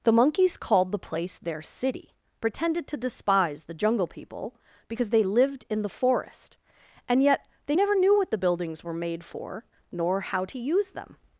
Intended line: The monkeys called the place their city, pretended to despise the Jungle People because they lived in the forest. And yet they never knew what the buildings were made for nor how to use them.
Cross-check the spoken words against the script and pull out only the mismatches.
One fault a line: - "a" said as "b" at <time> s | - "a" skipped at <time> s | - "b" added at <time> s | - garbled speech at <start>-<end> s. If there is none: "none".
none